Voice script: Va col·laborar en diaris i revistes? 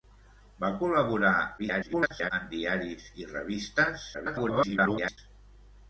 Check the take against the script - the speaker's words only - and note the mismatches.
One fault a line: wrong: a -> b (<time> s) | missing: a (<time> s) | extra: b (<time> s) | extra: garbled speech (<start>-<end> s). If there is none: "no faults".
extra: garbled speech (1.6-2.3 s)
extra: garbled speech (4.1-5.2 s)